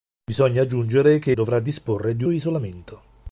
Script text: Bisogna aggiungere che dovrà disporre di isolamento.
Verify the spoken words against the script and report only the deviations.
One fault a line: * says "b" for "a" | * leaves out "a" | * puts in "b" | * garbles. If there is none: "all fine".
all fine